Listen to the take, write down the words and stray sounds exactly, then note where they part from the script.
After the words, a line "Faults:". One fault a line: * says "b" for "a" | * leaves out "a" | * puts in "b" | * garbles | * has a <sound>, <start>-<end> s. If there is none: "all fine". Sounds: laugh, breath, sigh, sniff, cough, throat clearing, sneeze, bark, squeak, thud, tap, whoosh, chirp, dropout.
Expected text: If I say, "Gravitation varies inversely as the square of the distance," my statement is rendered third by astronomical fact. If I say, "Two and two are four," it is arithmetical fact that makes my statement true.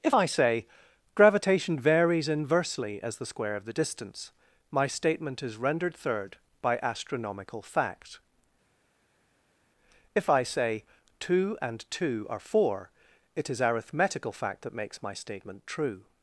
If I say, "Gravitation varies inversely as the square of the distance," my statement is rendered third by astronomical fact. If I say, "Two and two are four," it is arithmetical fact that makes my statement true.
Faults:
all fine